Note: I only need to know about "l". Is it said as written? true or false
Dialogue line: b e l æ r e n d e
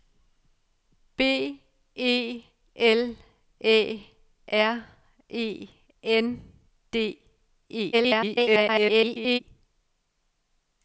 true